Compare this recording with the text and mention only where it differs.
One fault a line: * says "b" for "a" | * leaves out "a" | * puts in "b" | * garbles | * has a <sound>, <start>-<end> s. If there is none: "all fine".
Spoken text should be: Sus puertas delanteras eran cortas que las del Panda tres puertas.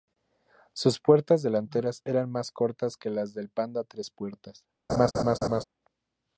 * puts in "más"
* has a laugh, 4.9-5.6 s